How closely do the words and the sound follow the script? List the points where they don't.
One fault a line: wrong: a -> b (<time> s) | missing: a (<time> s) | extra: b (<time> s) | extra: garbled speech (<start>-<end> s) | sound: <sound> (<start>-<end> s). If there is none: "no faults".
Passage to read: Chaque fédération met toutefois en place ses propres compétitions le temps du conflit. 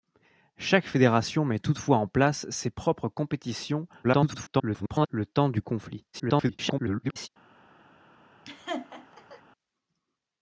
extra: garbled speech (4.0-5.1 s)
extra: garbled speech (6.1-7.3 s)
sound: laugh (8.5-9.4 s)